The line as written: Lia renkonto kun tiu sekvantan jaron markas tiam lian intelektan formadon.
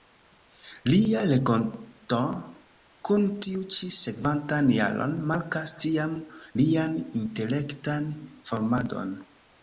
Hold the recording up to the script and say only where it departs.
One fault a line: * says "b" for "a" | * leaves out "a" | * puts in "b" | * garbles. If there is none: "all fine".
* puts in "ĉi"